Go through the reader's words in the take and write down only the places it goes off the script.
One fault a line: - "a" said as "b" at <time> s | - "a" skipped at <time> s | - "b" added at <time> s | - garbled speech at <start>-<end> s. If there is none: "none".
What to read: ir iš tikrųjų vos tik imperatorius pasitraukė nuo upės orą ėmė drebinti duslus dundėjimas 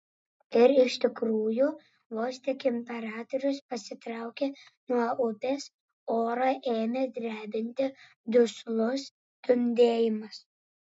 none